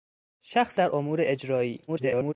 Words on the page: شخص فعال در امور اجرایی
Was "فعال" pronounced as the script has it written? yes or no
no